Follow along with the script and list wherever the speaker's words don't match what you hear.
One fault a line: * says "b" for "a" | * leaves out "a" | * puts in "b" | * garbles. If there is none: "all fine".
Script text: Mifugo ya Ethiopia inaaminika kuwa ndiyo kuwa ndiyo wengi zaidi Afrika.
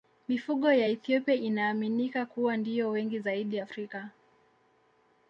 * leaves out "kuwa ndiyo"